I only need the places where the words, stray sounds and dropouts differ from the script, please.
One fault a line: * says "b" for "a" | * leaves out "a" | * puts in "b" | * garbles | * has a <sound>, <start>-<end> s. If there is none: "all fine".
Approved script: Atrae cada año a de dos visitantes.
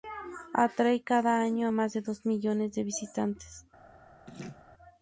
* puts in "más"
* puts in "millones de"
* has a laugh, 4.3-4.6 s